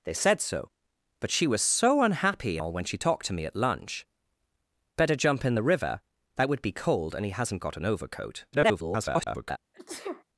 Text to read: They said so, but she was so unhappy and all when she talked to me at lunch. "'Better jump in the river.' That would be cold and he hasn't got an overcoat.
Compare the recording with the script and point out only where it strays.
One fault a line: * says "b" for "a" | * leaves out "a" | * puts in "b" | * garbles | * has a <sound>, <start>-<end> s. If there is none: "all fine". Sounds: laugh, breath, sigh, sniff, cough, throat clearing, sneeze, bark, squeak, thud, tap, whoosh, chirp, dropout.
* leaves out "and"
* garbles
* has a sneeze, 9.7-10.2 s